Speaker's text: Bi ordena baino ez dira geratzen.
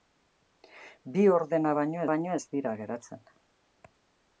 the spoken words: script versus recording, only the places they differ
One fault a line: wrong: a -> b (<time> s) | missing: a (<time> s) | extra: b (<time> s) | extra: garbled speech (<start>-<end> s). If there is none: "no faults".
extra: baino (2.1 s)